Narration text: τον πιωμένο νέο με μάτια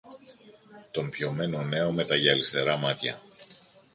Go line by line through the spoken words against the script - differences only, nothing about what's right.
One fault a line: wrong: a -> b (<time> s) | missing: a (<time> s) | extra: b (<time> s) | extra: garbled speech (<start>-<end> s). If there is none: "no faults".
extra: τα γυαλιστερά (2.0 s)